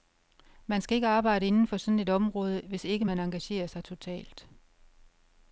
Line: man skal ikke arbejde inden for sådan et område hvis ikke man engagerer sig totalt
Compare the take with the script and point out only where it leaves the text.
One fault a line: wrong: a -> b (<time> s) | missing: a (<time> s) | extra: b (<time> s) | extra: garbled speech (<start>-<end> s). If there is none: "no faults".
no faults